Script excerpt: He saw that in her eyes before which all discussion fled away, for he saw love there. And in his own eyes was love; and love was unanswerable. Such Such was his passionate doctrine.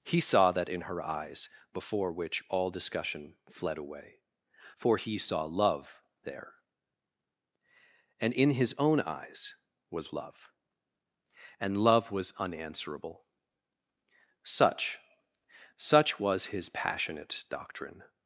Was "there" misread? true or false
false